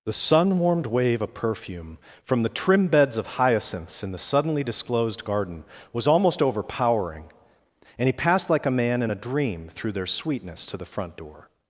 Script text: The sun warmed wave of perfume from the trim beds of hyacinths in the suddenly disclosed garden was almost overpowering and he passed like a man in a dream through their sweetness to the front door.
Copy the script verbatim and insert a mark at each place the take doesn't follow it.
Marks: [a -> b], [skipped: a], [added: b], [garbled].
The sun warmed wave of perfume from the trim beds of hyacinths in the suddenly disclosed garden was almost overpowering and he passed like a man in a dream through their sweetness to the front door.